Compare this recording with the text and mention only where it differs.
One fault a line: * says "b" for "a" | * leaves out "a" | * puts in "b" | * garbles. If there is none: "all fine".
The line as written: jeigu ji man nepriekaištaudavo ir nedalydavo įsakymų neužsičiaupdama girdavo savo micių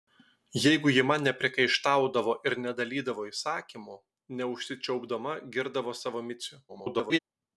* garbles